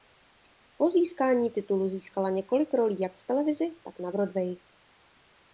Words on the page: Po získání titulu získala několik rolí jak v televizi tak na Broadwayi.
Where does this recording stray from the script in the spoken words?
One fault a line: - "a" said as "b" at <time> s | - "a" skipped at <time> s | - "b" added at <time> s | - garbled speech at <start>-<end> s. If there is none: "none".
none